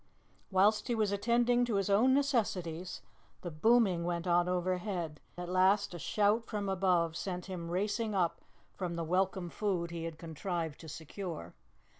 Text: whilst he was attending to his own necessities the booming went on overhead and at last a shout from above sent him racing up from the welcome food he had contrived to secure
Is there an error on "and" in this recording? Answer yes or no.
yes